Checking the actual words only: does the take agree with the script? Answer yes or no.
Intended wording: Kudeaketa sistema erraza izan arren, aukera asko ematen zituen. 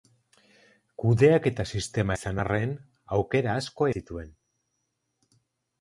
no